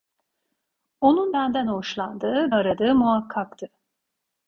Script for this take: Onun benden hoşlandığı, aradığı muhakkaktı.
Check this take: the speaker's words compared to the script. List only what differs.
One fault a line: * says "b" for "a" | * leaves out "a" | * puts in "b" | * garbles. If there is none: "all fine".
all fine